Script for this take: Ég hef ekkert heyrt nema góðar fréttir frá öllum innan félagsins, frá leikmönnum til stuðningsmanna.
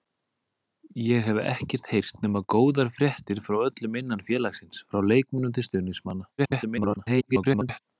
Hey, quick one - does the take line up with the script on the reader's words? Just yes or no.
no